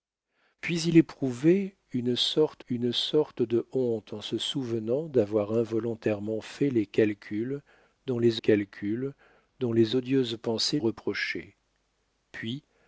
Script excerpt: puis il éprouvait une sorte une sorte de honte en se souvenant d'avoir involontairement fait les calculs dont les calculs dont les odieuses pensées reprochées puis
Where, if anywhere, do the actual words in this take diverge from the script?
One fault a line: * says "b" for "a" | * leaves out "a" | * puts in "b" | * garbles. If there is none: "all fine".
all fine